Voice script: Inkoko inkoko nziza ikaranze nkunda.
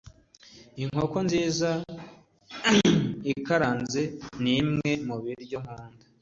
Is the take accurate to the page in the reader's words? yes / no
no